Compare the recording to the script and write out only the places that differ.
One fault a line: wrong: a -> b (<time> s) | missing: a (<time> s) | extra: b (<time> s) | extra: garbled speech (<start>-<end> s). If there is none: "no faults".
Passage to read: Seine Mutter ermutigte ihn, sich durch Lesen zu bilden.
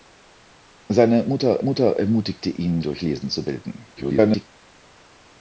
extra: Mutter (1.6 s)
missing: sich (2.8 s)
extra: garbled speech (4.0-4.5 s)